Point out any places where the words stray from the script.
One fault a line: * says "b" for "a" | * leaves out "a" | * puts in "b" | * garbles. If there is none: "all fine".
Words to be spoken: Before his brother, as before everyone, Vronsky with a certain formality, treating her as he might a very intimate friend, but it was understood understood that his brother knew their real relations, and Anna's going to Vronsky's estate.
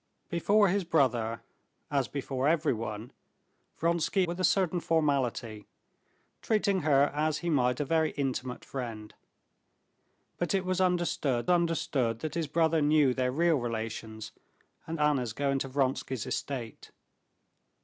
all fine